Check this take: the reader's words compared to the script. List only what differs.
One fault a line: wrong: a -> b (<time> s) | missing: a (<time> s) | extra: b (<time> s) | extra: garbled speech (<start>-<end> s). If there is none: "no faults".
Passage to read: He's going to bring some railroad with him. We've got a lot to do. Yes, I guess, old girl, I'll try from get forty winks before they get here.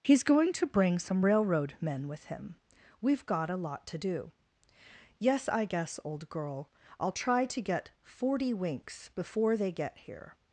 extra: men (1.8 s)
wrong: from -> to (7.5 s)